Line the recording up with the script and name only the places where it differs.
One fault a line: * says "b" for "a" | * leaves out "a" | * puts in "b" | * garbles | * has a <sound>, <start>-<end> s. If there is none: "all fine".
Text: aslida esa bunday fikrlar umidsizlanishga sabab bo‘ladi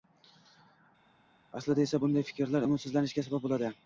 all fine